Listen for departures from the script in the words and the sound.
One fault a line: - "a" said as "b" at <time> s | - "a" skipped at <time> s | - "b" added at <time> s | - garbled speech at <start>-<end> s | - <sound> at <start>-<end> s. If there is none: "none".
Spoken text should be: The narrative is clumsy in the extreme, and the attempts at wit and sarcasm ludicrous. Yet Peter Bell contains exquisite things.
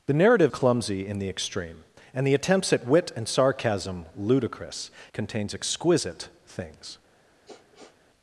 - "is" skipped at 0.5 s
- "Yet Peter Bell" skipped at 4.9 s
- sniff at 7.4-8.0 s